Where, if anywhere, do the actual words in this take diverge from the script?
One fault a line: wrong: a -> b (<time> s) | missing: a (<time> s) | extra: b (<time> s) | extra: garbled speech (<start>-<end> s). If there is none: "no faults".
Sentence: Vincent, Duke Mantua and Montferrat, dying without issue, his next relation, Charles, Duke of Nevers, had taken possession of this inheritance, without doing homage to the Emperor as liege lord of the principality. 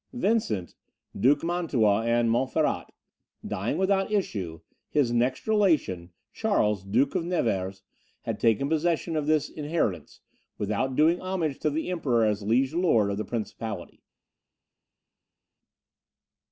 no faults